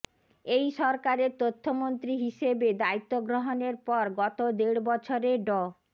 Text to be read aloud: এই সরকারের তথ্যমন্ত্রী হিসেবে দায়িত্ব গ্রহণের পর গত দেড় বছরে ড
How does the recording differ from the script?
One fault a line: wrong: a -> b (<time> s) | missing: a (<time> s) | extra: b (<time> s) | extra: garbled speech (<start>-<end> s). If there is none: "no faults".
no faults